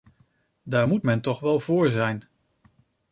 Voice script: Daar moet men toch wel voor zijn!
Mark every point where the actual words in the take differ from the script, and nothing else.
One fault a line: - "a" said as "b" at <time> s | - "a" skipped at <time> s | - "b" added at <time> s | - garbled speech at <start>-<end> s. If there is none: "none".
none